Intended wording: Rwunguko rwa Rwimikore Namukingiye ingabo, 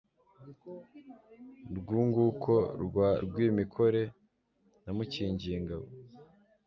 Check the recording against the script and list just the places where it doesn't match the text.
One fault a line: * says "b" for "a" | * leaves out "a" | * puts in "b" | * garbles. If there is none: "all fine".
all fine